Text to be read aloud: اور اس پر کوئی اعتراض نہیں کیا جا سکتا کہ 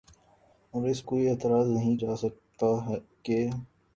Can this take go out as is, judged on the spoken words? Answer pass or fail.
fail